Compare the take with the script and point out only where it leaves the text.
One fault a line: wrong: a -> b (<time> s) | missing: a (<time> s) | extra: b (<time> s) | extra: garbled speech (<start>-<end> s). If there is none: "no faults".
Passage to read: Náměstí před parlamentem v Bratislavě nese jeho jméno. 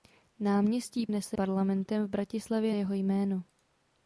wrong: před -> nese (1.1 s)
missing: nese (2.7 s)